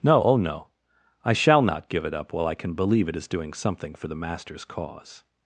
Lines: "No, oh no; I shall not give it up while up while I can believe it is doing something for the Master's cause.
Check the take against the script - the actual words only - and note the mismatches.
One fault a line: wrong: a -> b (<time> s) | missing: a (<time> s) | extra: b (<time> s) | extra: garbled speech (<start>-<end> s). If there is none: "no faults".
missing: up while (2.5 s)